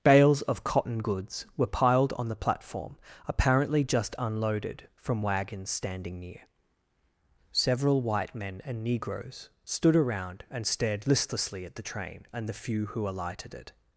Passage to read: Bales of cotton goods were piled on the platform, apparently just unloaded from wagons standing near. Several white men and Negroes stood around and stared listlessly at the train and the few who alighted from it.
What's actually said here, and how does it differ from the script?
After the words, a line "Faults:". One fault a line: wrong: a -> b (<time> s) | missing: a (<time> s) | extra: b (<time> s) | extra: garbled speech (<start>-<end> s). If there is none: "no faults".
Bales of cotton goods were piled on the platform, apparently just unloaded from wagons standing near. Several white men and Negroes stood around and stared listlessly at the train and the few who alighted it.
Faults:
missing: from (13.5 s)